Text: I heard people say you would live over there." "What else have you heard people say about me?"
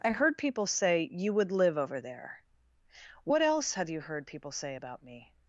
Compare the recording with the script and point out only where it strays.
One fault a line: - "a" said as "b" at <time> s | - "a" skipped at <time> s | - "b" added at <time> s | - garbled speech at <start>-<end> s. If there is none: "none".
none